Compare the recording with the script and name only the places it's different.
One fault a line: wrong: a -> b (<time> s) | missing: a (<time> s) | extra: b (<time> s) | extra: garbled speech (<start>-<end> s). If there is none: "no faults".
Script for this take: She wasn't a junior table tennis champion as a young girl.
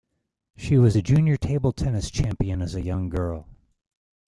wrong: wasn't -> was (0.8 s)